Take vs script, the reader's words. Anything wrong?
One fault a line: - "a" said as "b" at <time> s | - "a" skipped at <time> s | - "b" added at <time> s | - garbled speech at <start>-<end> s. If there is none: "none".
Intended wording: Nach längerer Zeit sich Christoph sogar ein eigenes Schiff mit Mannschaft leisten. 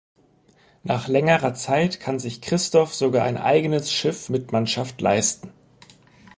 - "kann" added at 2.0 s